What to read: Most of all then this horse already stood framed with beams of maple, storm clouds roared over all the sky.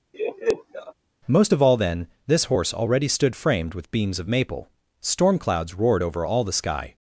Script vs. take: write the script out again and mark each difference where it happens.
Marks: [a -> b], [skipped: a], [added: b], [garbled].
Most of all then this horse already stood framed with beams of maple, storm clouds roared over all the sky.